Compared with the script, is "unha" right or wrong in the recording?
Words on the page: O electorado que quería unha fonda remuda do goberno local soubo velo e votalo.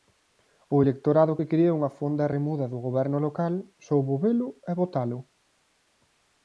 right